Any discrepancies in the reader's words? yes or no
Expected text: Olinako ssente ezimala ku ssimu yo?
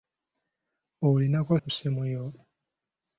yes